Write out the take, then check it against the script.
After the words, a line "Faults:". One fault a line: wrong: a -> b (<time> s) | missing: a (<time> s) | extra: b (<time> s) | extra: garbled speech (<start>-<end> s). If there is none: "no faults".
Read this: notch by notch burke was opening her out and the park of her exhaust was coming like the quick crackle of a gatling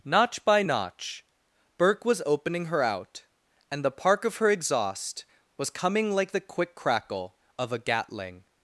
notch by notch burke was opening her out and the park of her exhaust was coming like the quick crackle of a gatling
Faults:
no faults